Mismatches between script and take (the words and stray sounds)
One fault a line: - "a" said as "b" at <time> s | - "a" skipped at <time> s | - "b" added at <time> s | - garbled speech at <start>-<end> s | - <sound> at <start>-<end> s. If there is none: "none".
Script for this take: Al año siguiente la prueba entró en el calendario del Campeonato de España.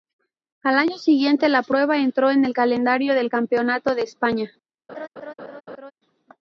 - laugh at 4.9-5.9 s